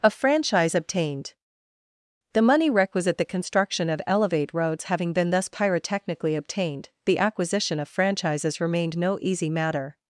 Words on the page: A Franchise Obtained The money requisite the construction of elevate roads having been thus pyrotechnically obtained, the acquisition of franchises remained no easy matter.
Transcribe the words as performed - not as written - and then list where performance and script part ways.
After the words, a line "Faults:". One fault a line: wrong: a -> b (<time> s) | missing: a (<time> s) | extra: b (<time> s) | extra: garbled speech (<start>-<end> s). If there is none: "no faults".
A Franchise Obtained The money requisite the construction of elevate roads having been thus pyrotechnically obtained, the acquisition of franchises remained no easy matter.
Faults:
no faults